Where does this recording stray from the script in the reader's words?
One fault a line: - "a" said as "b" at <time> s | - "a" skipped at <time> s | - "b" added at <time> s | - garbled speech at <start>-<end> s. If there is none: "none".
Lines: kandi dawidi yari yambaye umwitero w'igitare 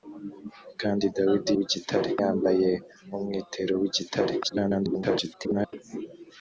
- "yari" said as "w'igitare" at 1.6 s
- garbled speech at 4.4-5.7 s